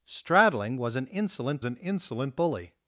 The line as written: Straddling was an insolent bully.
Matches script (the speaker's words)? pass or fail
fail